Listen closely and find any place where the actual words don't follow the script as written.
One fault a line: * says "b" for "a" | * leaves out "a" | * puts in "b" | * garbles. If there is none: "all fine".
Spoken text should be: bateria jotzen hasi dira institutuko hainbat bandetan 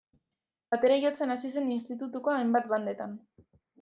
* says "zen" for "dira"